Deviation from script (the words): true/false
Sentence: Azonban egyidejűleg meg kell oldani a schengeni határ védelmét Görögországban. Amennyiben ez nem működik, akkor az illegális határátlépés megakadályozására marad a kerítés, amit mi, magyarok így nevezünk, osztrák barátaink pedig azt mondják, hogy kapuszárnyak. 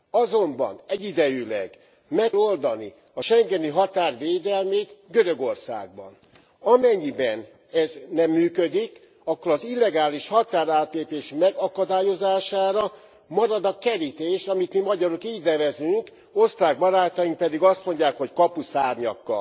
true